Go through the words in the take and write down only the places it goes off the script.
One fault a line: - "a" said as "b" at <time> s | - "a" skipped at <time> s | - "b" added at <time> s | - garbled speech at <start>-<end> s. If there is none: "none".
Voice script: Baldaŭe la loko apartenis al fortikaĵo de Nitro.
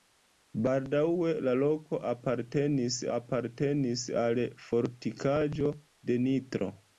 - "apartenis" added at 3.2 s